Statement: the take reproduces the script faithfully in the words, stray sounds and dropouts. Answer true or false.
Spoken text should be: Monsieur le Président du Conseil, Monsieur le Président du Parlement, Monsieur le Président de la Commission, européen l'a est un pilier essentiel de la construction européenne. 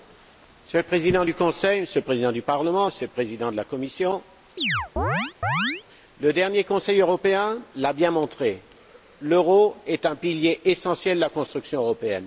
false